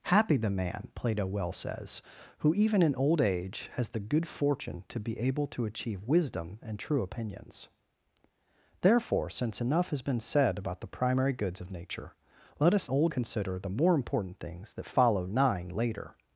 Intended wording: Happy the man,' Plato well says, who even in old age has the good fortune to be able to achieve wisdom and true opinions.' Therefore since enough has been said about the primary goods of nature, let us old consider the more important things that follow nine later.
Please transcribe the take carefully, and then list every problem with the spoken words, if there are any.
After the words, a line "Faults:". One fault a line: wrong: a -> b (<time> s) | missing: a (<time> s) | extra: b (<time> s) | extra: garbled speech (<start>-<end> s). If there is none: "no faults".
Happy the man,' Plato well says, who even in old age has the good fortune to be able to achieve wisdom and true opinions.' Therefore since enough has been said about the primary goods of nature, let us old consider the more important things that follow nine later.
Faults:
no faults